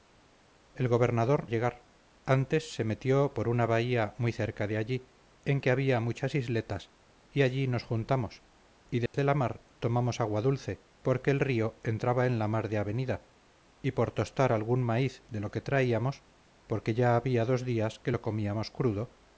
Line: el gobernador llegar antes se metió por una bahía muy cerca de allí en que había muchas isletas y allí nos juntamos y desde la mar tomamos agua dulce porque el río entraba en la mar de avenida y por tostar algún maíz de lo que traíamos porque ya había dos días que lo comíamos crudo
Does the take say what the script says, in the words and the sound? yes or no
no